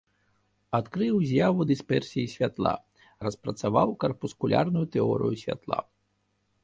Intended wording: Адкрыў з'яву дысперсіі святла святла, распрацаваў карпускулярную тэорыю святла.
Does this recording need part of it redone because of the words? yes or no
yes